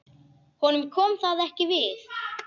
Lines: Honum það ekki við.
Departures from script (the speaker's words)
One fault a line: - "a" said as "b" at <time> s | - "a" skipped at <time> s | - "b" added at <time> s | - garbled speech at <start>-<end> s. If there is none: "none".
- "kom" added at 0.9 s